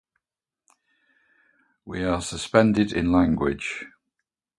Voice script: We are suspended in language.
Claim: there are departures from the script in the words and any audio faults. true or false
false